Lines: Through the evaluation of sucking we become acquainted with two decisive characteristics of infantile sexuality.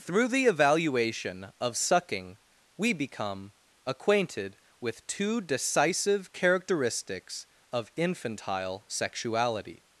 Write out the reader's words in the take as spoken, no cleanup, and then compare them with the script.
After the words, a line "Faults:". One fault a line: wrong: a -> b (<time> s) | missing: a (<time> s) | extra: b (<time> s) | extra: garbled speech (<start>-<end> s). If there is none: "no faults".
Through the evaluation of sucking we become acquainted with two decisive characteristics of infantile sexuality.
Faults:
no faults